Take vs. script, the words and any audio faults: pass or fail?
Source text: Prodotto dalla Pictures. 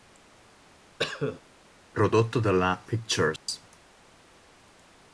fail